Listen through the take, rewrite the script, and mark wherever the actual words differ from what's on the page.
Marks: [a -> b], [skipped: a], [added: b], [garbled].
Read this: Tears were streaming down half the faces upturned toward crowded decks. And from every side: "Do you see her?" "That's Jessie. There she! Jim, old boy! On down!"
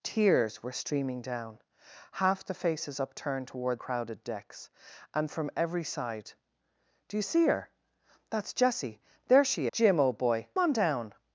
Tears were streaming down half the faces upturned toward crowded decks. And from every side: "Do you see her?" "That's Jessie. There she! Jim, old boy! On down!"